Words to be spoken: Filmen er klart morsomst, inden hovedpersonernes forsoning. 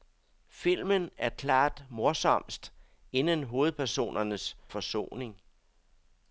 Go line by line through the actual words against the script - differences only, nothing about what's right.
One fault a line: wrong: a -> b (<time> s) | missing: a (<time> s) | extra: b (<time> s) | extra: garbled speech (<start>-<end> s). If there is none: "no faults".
no faults